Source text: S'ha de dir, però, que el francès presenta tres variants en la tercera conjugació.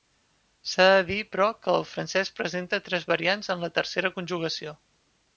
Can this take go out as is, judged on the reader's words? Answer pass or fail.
pass